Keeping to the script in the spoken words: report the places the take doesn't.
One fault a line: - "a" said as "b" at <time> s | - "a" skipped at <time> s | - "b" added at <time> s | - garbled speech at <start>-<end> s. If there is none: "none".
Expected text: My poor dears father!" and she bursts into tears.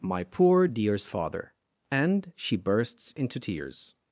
none